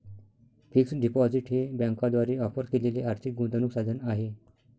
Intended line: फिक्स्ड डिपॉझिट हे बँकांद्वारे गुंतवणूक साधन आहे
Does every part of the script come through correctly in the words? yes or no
no